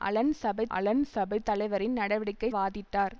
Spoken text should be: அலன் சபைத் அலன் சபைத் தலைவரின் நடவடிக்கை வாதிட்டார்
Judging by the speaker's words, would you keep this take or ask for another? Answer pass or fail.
pass